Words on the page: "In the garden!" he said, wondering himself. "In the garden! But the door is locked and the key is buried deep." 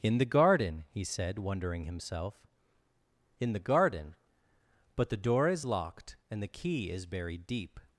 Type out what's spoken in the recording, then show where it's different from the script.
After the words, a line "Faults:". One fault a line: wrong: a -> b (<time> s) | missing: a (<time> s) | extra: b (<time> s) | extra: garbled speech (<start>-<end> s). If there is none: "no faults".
"In the garden!" he said, wondering himself. "In the garden! But the door is locked and the key is buried deep."
Faults:
no faults